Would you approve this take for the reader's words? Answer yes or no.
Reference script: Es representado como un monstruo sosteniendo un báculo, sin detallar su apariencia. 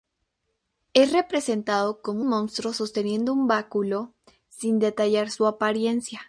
no